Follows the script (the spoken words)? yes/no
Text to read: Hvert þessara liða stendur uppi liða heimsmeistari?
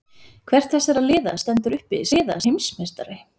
yes